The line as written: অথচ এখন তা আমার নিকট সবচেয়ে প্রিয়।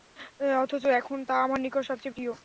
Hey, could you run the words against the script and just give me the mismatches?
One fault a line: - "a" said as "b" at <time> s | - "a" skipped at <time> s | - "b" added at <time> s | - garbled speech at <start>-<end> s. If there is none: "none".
none